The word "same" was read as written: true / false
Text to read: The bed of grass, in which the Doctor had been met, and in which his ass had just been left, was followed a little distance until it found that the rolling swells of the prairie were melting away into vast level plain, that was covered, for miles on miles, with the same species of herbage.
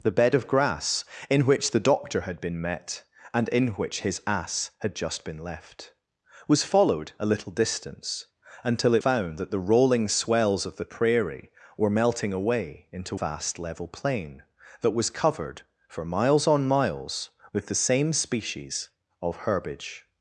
true